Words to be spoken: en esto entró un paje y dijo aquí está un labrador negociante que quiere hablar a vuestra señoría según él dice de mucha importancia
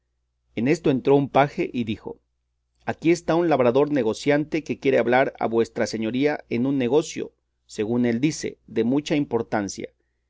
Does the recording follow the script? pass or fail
fail